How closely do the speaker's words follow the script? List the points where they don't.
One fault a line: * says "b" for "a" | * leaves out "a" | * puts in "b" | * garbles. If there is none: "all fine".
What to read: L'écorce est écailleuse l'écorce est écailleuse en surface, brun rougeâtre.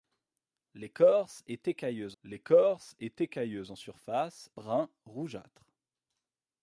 all fine